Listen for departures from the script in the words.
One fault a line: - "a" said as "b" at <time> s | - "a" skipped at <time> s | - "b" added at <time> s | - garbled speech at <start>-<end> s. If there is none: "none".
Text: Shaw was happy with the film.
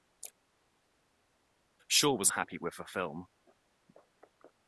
none